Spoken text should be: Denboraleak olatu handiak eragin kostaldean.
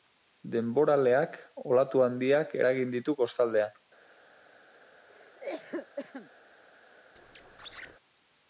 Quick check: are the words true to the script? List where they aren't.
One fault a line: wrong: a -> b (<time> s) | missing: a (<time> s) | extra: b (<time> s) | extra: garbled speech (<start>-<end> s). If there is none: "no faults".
extra: ditu (3.0 s)